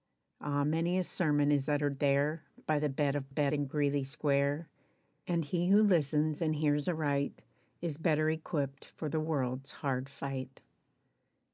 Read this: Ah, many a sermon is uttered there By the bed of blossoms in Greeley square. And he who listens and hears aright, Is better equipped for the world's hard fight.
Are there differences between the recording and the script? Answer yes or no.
yes